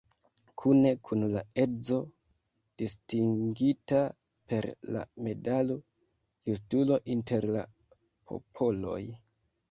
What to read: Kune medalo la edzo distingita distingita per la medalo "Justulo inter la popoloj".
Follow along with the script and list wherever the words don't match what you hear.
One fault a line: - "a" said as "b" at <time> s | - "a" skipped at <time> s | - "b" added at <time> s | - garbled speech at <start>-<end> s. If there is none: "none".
- "medalo" said as "kun" at 1.1 s
- "distingita" skipped at 4.0 s